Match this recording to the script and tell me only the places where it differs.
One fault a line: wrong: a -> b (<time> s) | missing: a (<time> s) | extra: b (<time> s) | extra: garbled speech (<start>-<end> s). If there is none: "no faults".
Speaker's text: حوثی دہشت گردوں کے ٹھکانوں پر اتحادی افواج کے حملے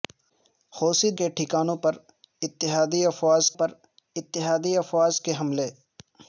wrong: دہشت گردوں کے ٹھکانوں -> کے ٹھکانوں پر اتحادی افواج (1.1 s)